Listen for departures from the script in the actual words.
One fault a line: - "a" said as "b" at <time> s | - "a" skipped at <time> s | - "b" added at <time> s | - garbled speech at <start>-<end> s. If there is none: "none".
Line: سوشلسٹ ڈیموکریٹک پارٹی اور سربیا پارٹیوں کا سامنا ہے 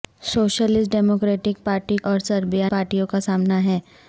none